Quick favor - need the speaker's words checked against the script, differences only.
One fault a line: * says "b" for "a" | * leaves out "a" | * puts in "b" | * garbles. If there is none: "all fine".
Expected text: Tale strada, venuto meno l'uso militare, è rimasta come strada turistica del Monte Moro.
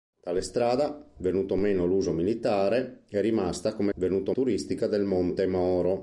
* says "venuto" for "strada"